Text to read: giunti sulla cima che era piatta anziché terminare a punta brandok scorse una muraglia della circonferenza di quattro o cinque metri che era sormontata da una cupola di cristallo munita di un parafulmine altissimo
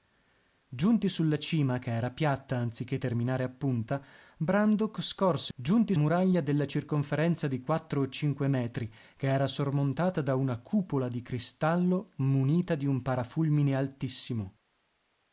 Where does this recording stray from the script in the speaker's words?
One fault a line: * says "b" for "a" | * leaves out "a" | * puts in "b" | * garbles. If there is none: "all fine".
* says "giunti" for "una"